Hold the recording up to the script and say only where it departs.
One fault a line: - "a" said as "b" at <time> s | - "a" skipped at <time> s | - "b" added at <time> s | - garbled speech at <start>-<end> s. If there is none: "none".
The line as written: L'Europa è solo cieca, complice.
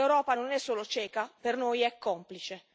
- "non" added at 0.3 s
- "per noi è" added at 1.4 s